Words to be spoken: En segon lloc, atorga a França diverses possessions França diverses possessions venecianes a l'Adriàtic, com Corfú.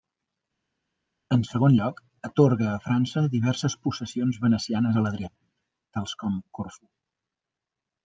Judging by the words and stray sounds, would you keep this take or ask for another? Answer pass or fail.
fail